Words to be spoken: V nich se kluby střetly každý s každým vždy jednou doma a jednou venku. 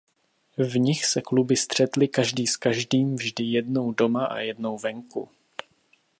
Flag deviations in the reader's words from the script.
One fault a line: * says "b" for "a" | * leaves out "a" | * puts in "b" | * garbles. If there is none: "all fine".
all fine